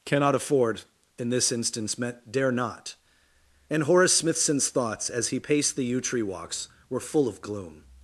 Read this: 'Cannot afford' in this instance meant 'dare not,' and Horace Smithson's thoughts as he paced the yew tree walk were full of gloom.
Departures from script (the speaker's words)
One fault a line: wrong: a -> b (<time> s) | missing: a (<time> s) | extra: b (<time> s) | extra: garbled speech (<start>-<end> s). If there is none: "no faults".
wrong: walk -> walks (6.2 s)